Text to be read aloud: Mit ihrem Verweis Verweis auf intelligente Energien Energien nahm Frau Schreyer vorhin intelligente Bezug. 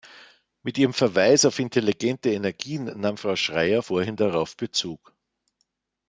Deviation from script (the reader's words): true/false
true